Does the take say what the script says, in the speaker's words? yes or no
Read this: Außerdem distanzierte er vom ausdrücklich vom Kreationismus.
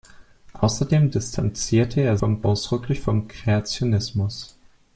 yes